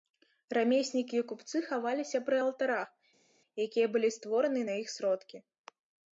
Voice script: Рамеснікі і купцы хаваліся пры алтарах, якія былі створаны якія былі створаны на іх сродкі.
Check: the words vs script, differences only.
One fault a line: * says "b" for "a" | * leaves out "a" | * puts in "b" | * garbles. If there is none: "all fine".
* leaves out "якія былі створаны"